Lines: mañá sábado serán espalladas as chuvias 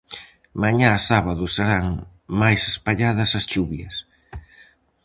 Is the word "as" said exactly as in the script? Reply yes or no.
yes